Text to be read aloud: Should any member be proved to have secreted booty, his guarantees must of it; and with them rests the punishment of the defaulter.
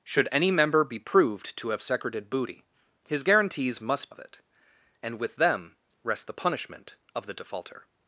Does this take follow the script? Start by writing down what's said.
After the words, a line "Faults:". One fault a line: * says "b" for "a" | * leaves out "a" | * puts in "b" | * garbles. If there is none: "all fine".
Should any member be proved to have secreted booty, his guarantees must of it; and with them rests the punishment of the defaulter.
Faults:
all fine